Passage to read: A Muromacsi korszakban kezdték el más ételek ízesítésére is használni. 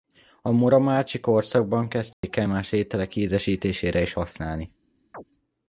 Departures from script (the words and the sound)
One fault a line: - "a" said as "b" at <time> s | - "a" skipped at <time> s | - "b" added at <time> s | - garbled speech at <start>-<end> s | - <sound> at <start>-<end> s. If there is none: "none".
- dropout at 2.1-2.2 s
- chirp at 5.1-5.2 s